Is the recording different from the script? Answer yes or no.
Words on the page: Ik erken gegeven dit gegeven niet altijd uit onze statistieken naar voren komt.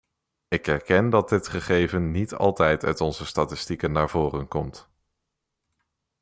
yes